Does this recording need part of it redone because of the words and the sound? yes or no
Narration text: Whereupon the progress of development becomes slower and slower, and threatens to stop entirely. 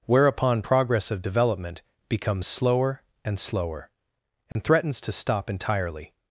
yes